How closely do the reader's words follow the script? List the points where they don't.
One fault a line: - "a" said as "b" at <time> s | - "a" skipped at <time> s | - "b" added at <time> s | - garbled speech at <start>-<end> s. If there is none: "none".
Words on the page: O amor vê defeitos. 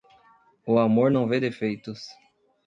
- "não" added at 1.1 s